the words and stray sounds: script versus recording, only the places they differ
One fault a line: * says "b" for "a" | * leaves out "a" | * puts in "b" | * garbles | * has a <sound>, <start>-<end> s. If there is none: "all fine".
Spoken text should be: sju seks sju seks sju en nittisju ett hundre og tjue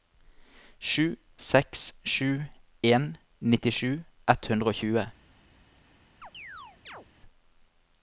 * leaves out "seks sju"
* has a chirp, 6.2-7.1 s